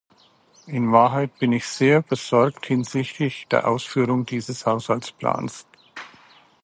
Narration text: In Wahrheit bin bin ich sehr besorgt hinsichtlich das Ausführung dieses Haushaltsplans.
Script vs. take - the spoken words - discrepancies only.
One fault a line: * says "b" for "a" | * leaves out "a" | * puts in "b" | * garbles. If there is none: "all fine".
* leaves out "bin"
* says "der" for "das"